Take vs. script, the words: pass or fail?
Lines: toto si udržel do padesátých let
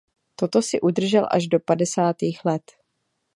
fail